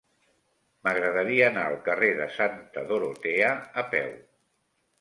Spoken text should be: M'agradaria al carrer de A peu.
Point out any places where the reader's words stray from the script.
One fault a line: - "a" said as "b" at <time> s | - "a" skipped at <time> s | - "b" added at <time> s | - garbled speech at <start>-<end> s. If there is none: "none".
- "anar" added at 1.5 s
- "Santa Dorotea" added at 2.4 s